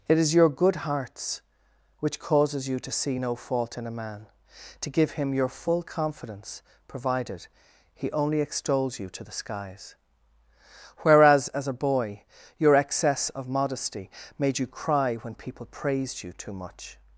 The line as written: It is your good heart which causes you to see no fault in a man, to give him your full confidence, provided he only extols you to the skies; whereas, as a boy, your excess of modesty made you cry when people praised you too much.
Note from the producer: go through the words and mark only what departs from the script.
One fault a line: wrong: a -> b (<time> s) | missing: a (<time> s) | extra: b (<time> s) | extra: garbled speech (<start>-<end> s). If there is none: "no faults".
wrong: heart -> hearts (0.8 s)